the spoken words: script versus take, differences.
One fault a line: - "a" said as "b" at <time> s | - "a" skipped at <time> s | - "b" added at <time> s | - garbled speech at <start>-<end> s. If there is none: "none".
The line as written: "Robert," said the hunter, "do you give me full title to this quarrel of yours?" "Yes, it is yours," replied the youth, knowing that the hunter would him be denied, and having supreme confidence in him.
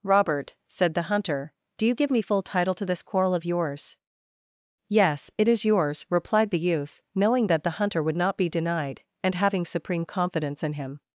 - "him" said as "not" at 8.2 s